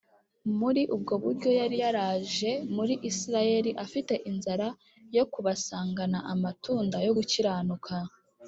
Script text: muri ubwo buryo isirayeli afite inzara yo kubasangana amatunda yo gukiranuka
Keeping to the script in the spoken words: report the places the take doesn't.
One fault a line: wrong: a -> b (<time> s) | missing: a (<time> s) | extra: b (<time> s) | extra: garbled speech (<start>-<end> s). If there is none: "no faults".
extra: yari yaraje muri (1.6 s)